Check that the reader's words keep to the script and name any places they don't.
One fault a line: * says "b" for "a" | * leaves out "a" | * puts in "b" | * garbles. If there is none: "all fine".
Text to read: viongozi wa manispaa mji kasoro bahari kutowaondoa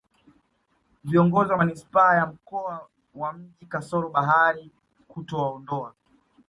* puts in "ya mkoa wa"